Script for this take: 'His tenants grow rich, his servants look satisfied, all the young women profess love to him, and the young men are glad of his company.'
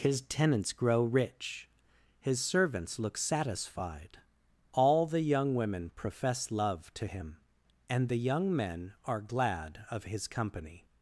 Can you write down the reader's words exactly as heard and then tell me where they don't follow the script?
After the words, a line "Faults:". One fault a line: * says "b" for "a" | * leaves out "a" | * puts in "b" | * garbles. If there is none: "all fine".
'His tenants grow rich, his servants look satisfied, all the young women profess love to him, and the young men are glad of his company.'
Faults:
all fine